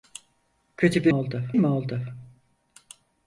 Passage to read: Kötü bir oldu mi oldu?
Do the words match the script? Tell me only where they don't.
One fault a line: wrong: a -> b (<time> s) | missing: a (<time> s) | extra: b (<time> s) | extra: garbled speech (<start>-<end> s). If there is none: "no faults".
no faults